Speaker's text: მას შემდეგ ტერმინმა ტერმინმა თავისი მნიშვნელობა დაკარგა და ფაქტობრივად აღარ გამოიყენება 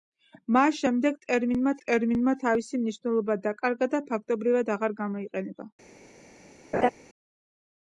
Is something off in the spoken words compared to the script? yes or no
no